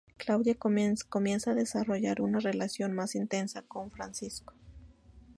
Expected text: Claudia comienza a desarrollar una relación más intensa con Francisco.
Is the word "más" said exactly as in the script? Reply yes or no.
yes